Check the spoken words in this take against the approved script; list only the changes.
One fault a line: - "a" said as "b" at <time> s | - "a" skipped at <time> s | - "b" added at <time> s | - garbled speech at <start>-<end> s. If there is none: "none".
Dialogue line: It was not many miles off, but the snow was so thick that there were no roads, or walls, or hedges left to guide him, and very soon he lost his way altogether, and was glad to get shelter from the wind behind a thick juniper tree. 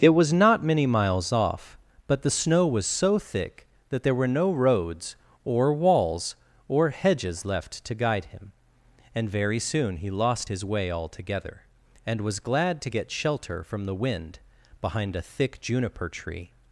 none